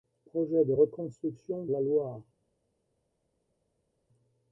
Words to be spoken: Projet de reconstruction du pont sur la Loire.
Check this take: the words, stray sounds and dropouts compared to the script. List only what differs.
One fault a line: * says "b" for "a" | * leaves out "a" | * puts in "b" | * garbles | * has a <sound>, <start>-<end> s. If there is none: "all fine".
* leaves out "du pont sur"